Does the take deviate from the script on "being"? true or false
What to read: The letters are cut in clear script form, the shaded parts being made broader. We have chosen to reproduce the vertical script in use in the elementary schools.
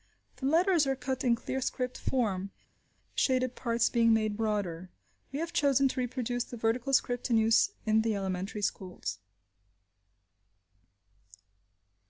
false